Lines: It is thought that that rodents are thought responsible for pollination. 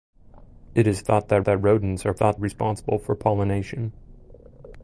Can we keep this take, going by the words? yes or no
yes